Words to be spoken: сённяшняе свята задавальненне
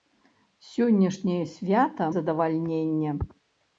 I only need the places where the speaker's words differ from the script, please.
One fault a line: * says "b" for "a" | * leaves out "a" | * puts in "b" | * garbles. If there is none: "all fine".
all fine